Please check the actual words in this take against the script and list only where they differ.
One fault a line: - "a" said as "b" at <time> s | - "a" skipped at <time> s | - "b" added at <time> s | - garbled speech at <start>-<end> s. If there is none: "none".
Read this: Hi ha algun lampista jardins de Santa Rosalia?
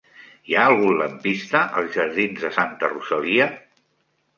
- "als" added at 1.8 s